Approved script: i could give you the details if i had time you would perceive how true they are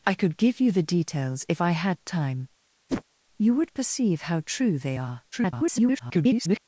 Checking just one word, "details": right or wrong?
right